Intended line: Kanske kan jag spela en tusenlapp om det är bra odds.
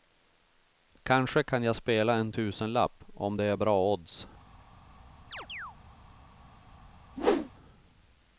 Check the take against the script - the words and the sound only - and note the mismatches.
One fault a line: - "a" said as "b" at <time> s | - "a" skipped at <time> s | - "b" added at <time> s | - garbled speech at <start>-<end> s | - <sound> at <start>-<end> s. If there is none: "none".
- chirp at 5.3-5.8 s
- whoosh at 7.2-7.5 s